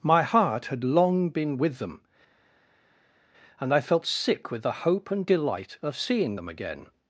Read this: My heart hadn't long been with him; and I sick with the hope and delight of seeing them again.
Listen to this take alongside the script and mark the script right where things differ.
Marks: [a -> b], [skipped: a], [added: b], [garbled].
My heart [hadn't -> had] long been with [him; -> them] and I [added: felt] sick with the hope and delight of seeing them again.